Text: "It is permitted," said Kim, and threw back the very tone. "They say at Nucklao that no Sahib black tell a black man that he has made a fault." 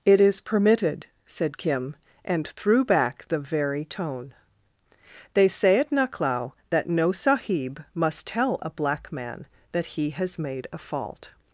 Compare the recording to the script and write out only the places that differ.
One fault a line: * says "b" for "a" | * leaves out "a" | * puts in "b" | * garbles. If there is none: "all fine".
* says "must" for "black"